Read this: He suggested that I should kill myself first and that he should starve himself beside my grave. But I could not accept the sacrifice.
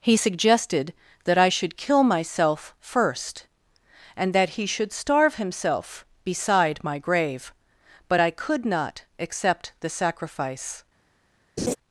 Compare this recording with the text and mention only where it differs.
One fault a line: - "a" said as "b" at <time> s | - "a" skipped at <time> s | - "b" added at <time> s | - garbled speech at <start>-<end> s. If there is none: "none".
none